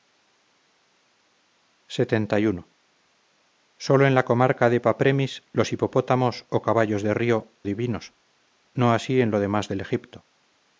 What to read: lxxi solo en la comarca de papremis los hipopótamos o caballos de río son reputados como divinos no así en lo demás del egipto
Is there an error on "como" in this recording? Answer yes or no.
yes